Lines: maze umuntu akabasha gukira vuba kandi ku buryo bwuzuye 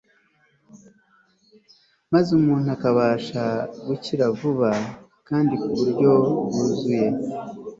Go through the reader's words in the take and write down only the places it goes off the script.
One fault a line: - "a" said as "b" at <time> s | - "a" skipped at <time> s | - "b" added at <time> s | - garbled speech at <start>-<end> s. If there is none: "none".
none